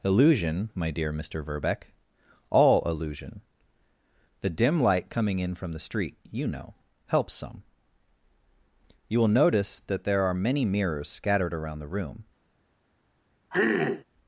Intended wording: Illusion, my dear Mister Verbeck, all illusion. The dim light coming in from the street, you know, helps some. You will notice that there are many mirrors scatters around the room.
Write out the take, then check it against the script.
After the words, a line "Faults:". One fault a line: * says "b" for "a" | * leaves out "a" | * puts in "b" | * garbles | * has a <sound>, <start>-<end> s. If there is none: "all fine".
Illusion, my dear Mister Verbeck, all illusion. The dim light coming in from the street, you know, helps some. You will notice that there are many mirrors scattered around the room.
Faults:
* says "scattered" for "scatters"
* has a throat clearing, 13.5-14.0 s